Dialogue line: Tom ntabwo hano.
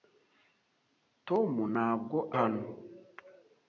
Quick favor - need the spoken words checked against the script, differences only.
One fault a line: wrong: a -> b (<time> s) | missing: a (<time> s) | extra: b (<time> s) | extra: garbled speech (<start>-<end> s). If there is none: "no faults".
no faults